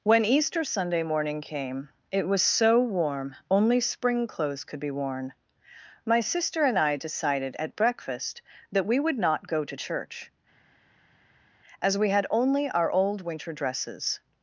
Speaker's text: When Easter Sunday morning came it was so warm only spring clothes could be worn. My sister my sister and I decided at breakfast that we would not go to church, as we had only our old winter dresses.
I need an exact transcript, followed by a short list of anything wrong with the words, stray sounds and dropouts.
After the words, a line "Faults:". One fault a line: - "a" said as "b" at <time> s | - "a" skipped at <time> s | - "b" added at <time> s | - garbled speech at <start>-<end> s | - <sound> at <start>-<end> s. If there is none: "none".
When Easter Sunday morning came it was so warm only spring clothes could be worn. My sister and I decided at breakfast that we would not go to church, as we had only our old winter dresses.
Faults:
- "my sister" skipped at 6.7 s